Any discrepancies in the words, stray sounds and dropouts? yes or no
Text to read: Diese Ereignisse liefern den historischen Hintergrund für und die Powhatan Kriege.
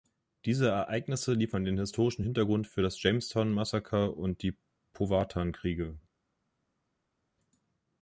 yes